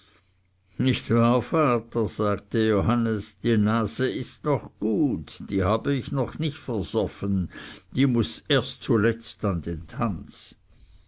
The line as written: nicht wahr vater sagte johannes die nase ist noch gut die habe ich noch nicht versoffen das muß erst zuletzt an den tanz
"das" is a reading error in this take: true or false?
true